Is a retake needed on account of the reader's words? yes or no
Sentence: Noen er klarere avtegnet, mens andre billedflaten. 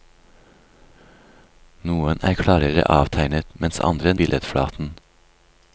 no